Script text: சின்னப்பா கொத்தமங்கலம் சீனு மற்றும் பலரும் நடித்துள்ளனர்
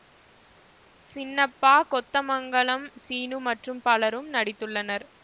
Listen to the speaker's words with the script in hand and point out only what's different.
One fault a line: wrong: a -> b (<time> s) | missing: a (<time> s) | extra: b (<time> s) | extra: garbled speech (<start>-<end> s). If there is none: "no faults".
no faults